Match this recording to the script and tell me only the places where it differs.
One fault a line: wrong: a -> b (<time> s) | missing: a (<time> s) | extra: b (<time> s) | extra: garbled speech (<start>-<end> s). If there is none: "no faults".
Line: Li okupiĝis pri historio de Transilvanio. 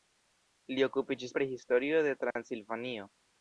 no faults